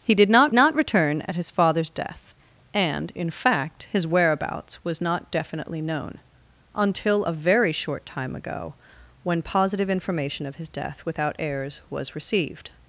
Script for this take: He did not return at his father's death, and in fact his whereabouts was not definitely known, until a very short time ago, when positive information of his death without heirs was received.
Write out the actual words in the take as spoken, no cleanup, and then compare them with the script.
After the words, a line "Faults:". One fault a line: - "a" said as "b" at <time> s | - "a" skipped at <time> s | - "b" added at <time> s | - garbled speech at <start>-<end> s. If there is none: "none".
He did not not return at his father's death, and in fact his whereabouts was not definitely known, until a very short time ago, when positive information of his death without heirs was received.
Faults:
- "not" added at 0.5 s